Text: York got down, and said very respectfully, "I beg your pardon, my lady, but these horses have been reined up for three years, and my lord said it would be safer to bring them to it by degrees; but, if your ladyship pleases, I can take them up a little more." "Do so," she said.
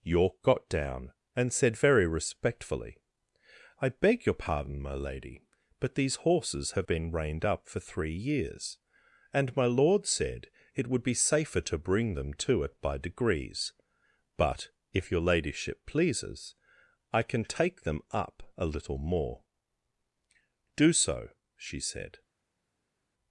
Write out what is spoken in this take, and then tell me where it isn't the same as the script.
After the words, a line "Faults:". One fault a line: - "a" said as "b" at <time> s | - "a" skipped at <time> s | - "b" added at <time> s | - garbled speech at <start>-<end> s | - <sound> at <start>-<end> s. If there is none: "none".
York got down, and said very respectfully, "I beg your pardon, my lady, but these horses have been reined up for three years, and my lord said it would be safer to bring them to it by degrees; but, if your ladyship pleases, I can take them up a little more." "Do so," she said.
Faults:
none